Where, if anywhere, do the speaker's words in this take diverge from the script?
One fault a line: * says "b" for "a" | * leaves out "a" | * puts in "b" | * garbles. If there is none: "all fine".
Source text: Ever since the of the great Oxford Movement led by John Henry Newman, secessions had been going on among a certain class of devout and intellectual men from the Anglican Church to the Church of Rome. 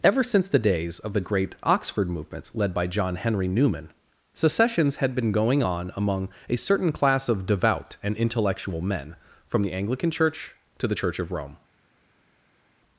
* puts in "days"